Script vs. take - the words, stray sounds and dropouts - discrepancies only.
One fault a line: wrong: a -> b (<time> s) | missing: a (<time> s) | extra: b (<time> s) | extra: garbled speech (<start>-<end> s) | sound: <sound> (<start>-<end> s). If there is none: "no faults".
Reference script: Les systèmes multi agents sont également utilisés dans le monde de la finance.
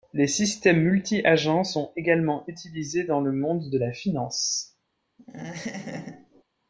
sound: laugh (5.2-6.4 s)